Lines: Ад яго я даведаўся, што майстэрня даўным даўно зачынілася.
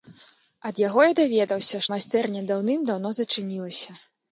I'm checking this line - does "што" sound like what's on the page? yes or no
no